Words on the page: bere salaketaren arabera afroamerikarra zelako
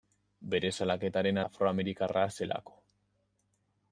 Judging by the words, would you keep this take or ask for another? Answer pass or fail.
fail